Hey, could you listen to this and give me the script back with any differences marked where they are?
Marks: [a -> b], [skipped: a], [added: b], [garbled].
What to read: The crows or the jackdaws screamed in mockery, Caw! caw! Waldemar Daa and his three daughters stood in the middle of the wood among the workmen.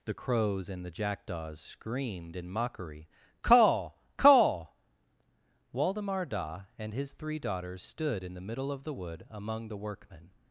The crows [or -> and] the jackdaws screamed in mockery, Caw! caw! Waldemar Daa and his three daughters stood in the middle of the wood among the workmen.